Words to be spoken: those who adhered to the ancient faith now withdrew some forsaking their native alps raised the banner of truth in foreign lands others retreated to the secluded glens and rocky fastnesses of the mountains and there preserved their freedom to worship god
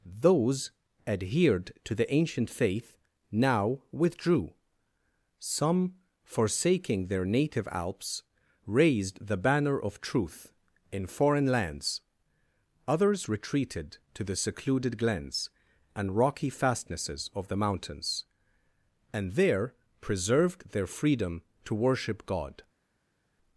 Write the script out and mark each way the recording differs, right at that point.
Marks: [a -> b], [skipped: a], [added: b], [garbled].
those [skipped: who] adhered to the ancient faith now withdrew some forsaking their native alps raised the banner of truth in foreign lands others retreated to the secluded glens and rocky fastnesses of the mountains and there preserved their freedom to worship god